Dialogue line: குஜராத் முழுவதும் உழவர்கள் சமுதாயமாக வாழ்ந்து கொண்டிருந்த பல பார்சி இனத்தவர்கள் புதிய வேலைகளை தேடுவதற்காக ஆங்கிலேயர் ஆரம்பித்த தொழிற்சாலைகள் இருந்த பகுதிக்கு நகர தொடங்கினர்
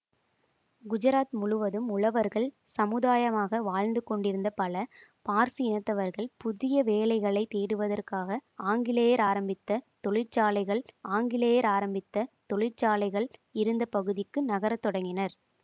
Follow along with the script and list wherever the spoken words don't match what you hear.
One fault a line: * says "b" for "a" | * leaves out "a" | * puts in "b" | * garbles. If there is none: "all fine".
* puts in "ஆங்கிலேயர் ஆரம்பித்த தொழிற்சாலைகள்"